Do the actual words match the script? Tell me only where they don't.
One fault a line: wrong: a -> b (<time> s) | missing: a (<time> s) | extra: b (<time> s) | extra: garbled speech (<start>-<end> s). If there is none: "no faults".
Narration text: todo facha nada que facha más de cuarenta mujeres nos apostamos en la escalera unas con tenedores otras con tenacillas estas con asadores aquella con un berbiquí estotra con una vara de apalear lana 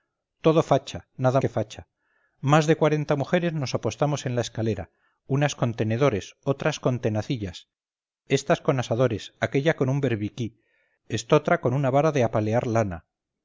no faults